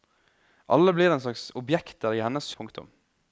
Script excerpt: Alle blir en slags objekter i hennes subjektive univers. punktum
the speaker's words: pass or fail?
fail